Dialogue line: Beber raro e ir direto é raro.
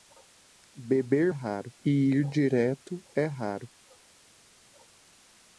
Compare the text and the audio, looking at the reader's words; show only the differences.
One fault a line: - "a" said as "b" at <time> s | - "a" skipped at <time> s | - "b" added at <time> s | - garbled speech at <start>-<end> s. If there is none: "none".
none